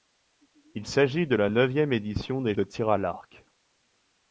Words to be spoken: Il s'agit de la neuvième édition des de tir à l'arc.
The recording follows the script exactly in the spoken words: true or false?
true